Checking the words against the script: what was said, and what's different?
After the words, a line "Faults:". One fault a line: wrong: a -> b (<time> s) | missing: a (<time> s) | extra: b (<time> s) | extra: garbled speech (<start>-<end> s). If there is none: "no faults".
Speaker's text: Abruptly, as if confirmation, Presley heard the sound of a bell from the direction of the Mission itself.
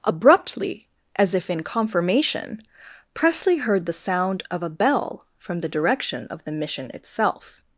Abruptly, as if in confirmation, Presley heard the sound of a bell from the direction of the Mission itself.
Faults:
extra: in (1.5 s)